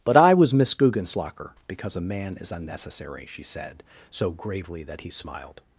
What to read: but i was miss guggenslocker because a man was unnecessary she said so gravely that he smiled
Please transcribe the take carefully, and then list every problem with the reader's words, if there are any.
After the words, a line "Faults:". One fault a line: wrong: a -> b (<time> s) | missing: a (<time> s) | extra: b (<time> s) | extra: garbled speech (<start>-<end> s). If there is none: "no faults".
but i was miss guggenslocker because a man is unnecessary she said so gravely that he smiled
Faults:
wrong: was -> is (2.4 s)